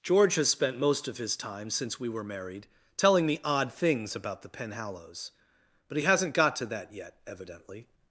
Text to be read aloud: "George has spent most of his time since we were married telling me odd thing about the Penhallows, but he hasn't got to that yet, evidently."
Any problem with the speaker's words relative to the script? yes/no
yes